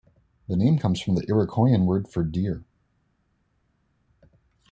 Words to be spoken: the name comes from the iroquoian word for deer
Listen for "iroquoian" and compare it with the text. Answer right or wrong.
right